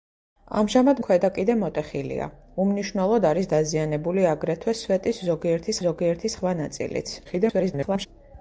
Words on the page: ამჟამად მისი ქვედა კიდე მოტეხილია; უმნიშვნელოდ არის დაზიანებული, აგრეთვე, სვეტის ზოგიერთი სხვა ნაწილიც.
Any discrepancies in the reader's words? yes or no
yes